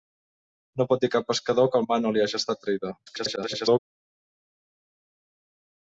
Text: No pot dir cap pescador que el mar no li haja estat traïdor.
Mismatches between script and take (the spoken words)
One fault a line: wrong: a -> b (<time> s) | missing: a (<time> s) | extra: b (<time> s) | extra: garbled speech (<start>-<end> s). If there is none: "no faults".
extra: garbled speech (3.1-3.8 s)